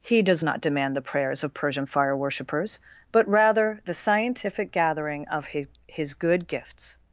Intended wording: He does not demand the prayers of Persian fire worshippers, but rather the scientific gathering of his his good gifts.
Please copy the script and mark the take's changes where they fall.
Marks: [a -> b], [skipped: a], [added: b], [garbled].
He does not demand the prayers of Persian fire worshippers, but rather the scientific gathering of his his good gifts.